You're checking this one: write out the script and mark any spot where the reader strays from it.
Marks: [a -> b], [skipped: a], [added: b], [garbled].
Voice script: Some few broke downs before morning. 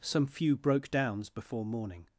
Some few broke downs before morning.